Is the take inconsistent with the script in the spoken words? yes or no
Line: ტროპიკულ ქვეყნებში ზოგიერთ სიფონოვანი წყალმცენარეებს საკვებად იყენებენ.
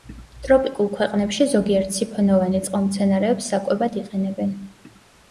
no